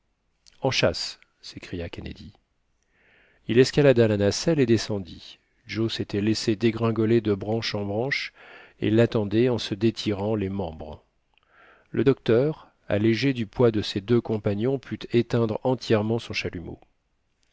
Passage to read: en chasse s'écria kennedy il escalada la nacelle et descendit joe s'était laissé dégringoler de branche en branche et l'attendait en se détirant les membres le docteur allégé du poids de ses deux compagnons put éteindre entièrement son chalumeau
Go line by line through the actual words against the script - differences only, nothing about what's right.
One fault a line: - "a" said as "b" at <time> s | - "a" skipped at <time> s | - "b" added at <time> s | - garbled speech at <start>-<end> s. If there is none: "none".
none